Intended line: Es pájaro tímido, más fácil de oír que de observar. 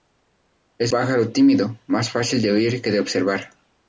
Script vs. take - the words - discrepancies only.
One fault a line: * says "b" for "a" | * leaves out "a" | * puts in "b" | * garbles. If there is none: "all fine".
all fine